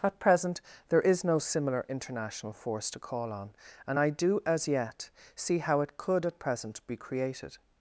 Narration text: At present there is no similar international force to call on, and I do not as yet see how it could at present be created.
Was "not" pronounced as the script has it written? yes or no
no